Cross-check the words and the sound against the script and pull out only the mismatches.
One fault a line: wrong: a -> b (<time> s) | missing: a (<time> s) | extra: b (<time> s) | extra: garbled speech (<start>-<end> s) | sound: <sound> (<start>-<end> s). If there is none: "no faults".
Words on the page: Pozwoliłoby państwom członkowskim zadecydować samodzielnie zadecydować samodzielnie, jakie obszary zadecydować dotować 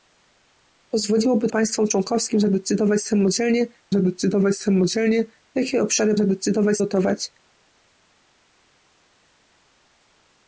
no faults